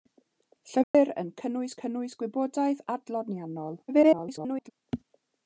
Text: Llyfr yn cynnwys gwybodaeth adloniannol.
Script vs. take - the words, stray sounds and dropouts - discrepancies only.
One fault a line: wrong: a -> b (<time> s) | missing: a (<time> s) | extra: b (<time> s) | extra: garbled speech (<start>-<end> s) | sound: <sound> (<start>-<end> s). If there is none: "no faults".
sound: dropout (0.8-0.9 s)
extra: cynnwys (1.8 s)
extra: garbled speech (3.9-4.7 s)